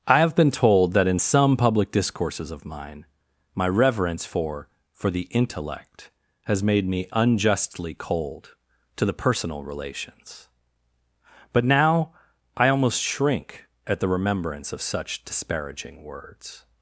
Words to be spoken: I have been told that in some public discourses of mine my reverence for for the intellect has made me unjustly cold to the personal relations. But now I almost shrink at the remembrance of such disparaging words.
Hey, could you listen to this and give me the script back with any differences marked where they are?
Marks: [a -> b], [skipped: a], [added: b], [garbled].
I have been told that in some public discourses of mine my reverence for for the intellect has made me unjustly cold to the personal relations. But now I almost shrink at the remembrance of such disparaging words.